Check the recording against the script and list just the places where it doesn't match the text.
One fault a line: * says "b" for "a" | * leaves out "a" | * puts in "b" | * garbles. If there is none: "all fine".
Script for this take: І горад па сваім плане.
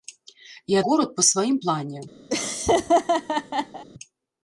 all fine